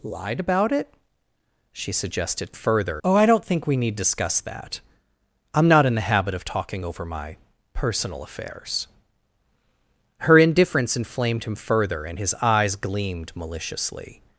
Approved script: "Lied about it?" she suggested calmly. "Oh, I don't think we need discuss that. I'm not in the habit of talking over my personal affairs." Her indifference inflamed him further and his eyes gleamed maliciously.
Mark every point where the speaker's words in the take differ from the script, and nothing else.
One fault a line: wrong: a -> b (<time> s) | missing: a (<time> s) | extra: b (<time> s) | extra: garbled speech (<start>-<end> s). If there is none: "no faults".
wrong: calmly -> further (2.5 s)